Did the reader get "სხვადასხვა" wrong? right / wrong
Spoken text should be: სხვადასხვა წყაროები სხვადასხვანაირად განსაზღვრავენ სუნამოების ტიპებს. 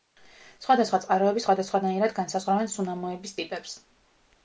right